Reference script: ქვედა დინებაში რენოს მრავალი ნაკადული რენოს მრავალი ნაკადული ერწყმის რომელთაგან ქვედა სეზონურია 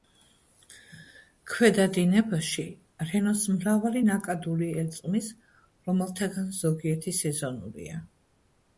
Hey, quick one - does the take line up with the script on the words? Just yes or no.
no